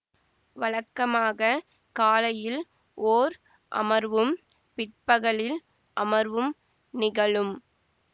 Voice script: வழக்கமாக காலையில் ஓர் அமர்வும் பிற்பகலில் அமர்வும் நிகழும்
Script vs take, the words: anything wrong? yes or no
no